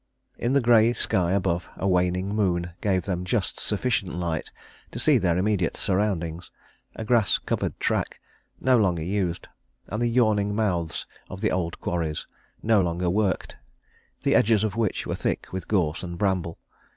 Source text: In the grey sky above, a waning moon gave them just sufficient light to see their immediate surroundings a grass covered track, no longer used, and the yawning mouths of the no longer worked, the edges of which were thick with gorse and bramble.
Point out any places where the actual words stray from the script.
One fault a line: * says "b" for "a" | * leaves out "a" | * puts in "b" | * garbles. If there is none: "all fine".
* puts in "old quarries"